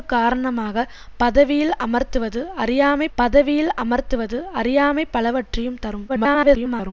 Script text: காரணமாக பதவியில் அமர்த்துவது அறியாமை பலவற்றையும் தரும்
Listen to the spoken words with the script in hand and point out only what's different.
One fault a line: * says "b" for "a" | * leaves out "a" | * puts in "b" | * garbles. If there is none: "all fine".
* puts in "பதவியில் அமர்த்துவது அறியாமை"
* garbles